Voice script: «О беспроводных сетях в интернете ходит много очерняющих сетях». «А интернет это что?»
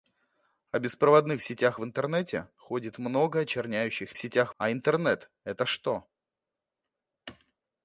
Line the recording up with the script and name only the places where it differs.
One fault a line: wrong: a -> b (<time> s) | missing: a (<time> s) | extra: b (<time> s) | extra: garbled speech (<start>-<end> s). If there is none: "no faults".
no faults